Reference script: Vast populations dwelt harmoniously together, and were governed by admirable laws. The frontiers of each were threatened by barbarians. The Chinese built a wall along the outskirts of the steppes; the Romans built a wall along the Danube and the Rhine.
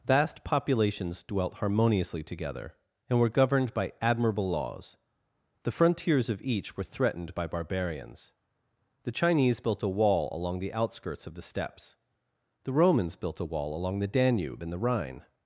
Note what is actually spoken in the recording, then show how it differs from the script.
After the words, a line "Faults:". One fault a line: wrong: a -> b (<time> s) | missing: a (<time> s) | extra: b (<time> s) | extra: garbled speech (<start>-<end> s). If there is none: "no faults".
Vast populations dwelt harmoniously together, and were governed by admirable laws. The frontiers of each were threatened by barbarians. The Chinese built a wall along the outskirts of the steppes; the Romans built a wall along the Danube and the Rhine.
Faults:
no faults